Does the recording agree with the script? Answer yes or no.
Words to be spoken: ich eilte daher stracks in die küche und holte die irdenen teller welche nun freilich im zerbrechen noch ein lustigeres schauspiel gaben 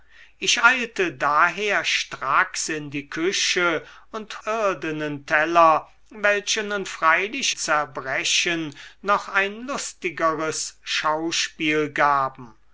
no